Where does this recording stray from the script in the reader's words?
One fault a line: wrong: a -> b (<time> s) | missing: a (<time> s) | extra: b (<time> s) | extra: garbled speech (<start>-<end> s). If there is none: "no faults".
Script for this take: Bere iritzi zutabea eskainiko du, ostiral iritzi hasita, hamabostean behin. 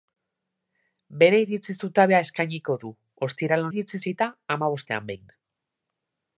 no faults